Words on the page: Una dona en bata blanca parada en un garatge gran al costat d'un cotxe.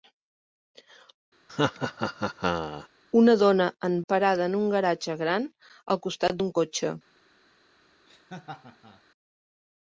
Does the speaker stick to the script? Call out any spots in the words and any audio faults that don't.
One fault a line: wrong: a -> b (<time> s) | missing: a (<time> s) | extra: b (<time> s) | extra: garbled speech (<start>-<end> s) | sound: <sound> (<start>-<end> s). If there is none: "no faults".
sound: laugh (1.5-2.9 s)
missing: bata blanca (3.9 s)
sound: laugh (8.1-9.0 s)